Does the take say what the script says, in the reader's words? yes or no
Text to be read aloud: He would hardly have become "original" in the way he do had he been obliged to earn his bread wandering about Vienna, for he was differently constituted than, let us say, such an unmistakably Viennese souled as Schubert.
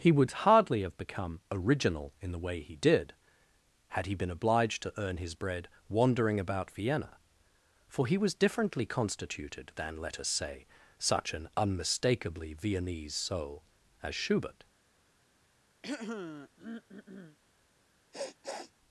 no